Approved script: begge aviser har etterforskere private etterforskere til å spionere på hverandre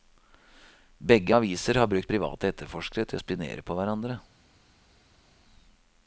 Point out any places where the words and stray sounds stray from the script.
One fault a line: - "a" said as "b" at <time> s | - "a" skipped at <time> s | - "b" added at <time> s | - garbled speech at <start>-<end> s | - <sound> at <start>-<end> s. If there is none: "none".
- "etterforskere" said as "brukt" at 1.9 s